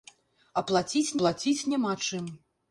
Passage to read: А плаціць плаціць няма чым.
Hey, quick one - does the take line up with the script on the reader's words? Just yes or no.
yes